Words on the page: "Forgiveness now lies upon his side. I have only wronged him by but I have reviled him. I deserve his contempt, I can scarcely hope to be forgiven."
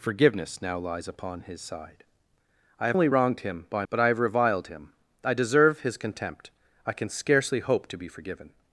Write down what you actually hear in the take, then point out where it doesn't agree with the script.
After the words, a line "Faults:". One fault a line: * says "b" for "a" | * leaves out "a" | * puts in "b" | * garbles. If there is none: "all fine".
"Forgiveness now lies upon his side. I have only wronged him by but I have reviled him. I deserve his contempt, I can scarcely hope to be forgiven."
Faults:
all fine